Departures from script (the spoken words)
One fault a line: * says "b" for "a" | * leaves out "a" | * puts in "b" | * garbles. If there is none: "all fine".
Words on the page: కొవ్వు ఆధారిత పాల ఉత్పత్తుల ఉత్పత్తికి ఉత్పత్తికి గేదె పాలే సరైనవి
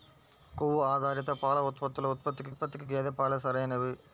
all fine